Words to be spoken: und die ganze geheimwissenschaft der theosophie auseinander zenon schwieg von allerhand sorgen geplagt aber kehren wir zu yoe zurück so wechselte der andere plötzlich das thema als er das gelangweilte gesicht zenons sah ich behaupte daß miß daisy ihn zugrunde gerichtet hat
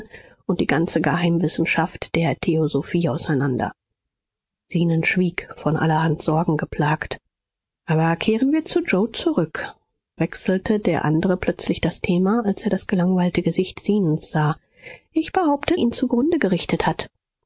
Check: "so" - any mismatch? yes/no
yes